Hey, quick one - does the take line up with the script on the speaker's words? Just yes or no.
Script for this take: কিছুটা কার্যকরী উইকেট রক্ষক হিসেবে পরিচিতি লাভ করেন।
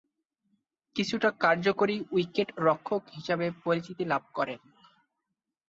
yes